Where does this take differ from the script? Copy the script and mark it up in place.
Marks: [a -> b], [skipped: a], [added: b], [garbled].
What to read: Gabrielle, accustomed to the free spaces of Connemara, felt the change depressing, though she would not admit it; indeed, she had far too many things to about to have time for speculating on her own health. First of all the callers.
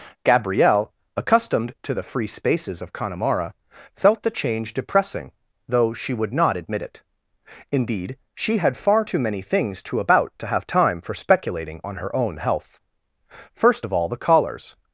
Gabrielle, accustomed to the free spaces of Connemara, felt the change depressing, though she would not admit it; indeed, she had far too many things to about to have time for speculating on her own health. First of all the callers.